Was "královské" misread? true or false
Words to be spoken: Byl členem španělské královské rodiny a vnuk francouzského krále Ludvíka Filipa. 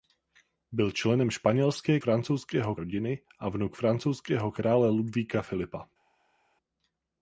true